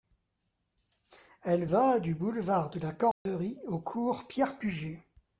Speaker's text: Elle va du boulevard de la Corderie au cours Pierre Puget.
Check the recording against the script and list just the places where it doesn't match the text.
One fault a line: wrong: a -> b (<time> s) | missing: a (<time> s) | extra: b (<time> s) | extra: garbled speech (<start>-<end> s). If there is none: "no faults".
no faults